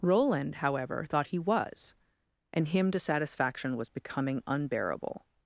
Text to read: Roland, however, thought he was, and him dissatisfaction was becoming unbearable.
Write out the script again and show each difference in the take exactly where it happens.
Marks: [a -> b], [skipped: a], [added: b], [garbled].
Roland, however, thought he was, and him dissatisfaction was becoming unbearable.